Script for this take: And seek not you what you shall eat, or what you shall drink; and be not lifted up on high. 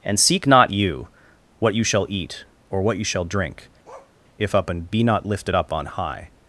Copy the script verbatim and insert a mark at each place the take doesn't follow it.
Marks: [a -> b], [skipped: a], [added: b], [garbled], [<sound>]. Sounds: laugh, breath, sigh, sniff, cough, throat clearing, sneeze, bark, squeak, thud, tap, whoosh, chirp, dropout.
And seek not you what you shall eat, or what you shall drink; [bark] [added: if up] and be not lifted up on high.